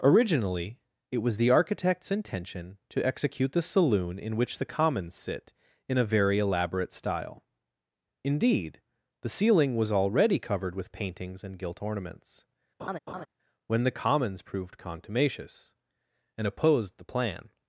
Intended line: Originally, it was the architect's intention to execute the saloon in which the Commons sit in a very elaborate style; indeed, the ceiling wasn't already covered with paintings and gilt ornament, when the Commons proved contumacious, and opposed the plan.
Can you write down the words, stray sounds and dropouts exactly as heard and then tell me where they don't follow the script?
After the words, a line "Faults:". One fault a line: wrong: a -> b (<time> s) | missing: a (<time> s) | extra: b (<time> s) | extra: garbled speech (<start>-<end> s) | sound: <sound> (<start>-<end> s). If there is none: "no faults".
Originally, it was the architect's intention to execute the saloon in which the Commons sit in a very elaborate style; indeed, the ceiling was already covered with paintings and gilt ornaments, when the Commons proved contumacious, and opposed the plan.
Faults:
wrong: wasn't -> was (9.8 s)
wrong: ornament -> ornaments (11.8 s)
sound: laugh (12.8-13.3 s)